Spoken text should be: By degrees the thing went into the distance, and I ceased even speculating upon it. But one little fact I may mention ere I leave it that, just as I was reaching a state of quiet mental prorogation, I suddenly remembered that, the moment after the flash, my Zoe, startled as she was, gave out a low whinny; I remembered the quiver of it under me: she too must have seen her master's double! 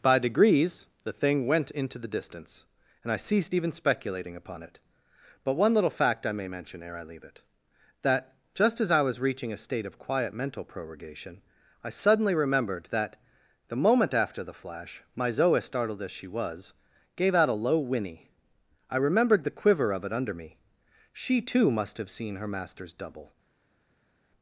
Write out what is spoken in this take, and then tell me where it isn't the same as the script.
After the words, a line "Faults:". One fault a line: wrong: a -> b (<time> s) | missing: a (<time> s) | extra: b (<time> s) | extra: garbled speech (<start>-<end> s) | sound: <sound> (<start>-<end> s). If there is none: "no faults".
By degrees the thing went into the distance, and I ceased even speculating upon it. But one little fact I may mention ere I leave it that, just as I was reaching a state of quiet mental prorogation, I suddenly remembered that, the moment after the flash, my Zoe, startled as she was, gave out a low whinny; I remembered the quiver of it under me: she too must have seen her master's double!
Faults:
no faults